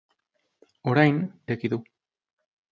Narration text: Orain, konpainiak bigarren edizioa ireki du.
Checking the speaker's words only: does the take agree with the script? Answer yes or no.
no